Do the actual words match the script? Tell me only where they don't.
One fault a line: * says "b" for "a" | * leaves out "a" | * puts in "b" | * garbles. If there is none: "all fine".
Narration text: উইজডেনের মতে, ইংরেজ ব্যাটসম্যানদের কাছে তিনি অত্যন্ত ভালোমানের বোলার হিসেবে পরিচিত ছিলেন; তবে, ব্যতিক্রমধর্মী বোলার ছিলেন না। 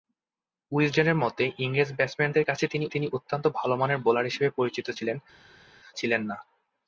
* puts in "তিনি"
* leaves out "তবে ব্যতিক্রমধর্মী বোলার"